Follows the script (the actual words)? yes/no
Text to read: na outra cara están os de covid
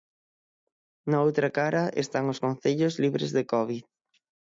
no